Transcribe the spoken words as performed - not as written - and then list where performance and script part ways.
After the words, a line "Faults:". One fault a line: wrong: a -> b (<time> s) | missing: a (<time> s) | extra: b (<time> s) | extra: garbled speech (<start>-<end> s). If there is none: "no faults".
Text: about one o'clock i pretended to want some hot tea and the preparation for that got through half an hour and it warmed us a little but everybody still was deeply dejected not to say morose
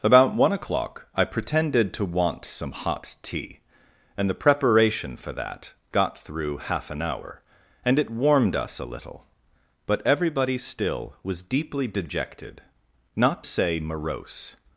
about one o'clock i pretended to want some hot tea and the preparation for that got through half an hour and it warmed us a little but everybody still was deeply dejected not say morose
Faults:
missing: to (13.4 s)